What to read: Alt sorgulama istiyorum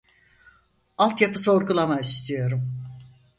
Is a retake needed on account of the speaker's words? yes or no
yes